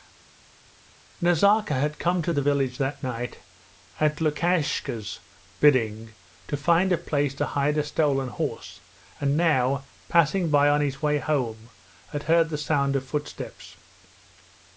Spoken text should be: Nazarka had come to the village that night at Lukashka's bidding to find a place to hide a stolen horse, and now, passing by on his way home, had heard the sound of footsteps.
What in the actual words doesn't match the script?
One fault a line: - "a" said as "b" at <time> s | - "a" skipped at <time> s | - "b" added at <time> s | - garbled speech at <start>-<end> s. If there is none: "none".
none